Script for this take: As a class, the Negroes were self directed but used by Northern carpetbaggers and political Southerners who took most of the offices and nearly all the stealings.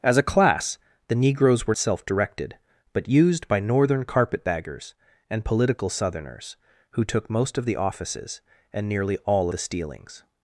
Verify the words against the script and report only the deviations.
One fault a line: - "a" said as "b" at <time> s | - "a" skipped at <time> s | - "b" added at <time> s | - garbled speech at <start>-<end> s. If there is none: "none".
none